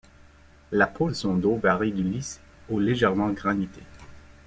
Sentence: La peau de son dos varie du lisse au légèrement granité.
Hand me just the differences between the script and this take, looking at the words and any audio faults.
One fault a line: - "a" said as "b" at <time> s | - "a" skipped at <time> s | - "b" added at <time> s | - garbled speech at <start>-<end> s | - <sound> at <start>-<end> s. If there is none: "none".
none